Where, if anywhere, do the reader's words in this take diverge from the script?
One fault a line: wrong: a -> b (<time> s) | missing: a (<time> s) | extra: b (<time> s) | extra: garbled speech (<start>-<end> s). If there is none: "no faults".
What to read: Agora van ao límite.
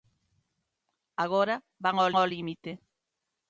extra: ao (2.2 s)